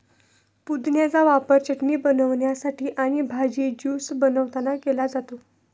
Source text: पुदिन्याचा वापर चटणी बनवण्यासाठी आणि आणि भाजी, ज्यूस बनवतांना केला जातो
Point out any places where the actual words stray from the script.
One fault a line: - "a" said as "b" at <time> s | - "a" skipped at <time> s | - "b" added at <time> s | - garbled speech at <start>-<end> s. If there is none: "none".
- "आणि" skipped at 3.2 s